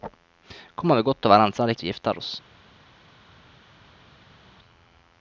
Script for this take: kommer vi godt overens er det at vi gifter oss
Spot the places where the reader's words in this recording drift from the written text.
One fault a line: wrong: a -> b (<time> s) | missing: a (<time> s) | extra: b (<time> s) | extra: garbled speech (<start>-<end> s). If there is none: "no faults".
no faults